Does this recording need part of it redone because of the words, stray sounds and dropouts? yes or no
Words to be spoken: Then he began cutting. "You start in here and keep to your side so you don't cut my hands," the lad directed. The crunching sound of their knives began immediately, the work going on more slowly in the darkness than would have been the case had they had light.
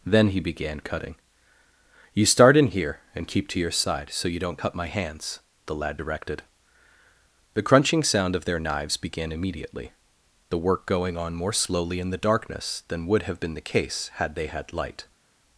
no